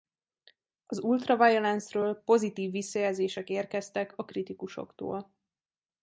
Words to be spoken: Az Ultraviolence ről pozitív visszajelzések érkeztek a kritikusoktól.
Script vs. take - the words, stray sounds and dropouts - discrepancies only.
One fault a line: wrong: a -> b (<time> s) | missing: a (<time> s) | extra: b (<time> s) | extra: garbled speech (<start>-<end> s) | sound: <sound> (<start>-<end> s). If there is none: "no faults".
no faults